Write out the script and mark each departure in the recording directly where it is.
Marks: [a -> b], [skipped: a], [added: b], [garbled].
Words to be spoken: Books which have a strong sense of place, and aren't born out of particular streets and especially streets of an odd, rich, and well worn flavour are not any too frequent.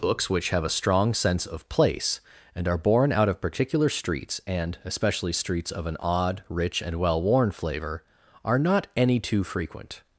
Books which have a strong sense of place, and [aren't -> are] born out of particular streets and especially streets of an odd, rich, and well worn flavour are not any too frequent.